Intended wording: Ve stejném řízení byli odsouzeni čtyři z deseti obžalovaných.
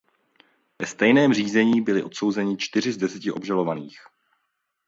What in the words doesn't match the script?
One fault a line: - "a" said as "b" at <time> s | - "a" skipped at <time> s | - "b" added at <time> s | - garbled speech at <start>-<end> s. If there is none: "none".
none